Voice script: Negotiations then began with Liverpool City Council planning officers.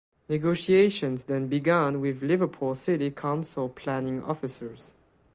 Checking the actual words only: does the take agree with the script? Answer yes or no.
yes